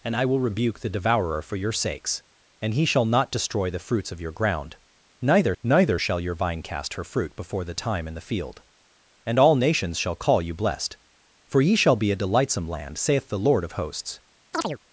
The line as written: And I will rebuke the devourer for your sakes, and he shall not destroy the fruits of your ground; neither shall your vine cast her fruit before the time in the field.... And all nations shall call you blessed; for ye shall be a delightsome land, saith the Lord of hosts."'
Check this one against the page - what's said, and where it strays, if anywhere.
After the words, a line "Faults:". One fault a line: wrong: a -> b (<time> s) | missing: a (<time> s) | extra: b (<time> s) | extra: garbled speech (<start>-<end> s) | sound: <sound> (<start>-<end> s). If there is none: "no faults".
And I will rebuke the devourer for your sakes, and he shall not destroy the fruits of your ground; neither neither shall your vine cast her fruit before the time in the field.... And all nations shall call you blessed; for ye shall be a delightsome land, saith the Lord of hosts."'
Faults:
extra: neither (5.6 s)
sound: chirp (14.5-14.8 s)